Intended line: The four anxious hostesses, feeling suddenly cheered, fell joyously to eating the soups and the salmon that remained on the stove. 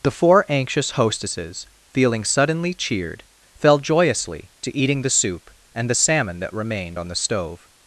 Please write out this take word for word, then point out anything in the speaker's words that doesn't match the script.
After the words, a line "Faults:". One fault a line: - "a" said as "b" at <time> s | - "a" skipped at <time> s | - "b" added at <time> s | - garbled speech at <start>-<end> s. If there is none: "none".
The four anxious hostesses, feeling suddenly cheered, fell joyously to eating the soup and the salmon that remained on the stove.
Faults:
- "soups" said as "soup" at 5.1 s